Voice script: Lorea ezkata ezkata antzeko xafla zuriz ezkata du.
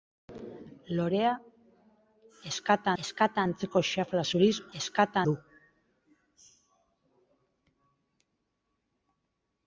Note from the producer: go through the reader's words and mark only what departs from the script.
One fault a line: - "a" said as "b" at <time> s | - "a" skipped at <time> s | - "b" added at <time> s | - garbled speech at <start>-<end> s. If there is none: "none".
none